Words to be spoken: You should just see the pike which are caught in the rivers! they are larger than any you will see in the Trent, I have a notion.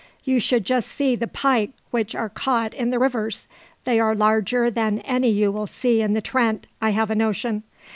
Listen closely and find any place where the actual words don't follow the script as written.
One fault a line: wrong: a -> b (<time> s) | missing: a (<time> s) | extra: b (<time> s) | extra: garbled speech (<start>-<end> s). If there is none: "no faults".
no faults